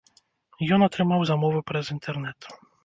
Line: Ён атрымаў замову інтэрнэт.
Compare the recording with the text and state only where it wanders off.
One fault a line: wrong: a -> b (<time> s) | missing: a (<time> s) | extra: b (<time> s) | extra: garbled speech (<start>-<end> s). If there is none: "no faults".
extra: праз (1.7 s)